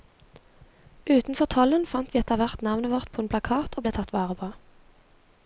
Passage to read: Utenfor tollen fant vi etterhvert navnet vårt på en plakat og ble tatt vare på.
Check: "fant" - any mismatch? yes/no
no